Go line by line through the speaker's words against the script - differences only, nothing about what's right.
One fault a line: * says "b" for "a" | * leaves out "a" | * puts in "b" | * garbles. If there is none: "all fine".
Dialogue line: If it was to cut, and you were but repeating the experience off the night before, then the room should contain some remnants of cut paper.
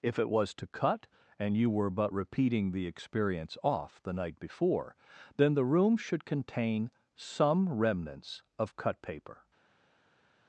all fine